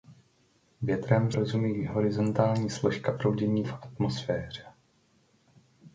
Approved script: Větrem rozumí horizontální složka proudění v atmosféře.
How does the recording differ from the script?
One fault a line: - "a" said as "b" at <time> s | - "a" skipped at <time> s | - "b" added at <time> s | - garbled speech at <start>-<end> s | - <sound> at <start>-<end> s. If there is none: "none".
none